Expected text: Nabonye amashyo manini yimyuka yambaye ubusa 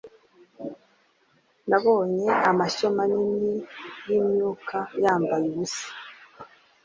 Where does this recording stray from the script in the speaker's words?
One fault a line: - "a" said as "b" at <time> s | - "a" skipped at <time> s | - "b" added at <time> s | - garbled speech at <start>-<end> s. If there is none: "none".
none